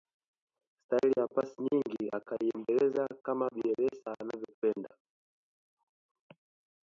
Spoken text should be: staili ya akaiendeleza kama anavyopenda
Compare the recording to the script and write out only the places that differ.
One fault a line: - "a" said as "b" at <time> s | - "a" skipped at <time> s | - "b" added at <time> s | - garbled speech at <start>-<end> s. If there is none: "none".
- "pasi nyingi" added at 1.3 s
- "bielsa" added at 3.5 s